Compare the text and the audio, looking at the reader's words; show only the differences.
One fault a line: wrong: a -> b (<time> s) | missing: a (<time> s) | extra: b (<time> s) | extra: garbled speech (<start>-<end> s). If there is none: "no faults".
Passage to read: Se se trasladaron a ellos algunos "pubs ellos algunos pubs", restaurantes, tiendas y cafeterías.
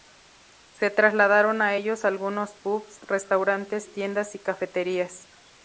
missing: se (0.9 s)
missing: ellos algunos pubs (3.0 s)